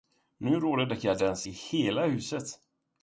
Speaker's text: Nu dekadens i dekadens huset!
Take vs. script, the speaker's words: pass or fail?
fail